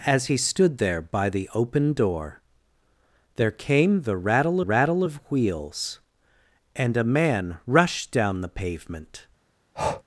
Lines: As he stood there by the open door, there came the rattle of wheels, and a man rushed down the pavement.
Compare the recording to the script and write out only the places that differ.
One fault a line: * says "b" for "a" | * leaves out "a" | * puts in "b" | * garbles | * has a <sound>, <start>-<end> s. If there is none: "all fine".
* puts in "rattle"
* has a breath, 9.8-10.0 s